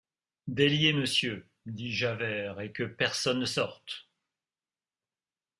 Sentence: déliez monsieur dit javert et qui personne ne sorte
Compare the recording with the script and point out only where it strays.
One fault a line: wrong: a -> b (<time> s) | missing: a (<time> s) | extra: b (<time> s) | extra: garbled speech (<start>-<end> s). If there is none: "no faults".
wrong: qui -> que (2.7 s)